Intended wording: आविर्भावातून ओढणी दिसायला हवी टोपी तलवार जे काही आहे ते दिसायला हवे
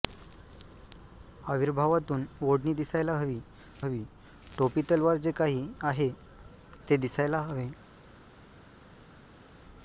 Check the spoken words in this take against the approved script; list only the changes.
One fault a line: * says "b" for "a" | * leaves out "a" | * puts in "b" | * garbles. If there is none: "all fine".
* puts in "हवी"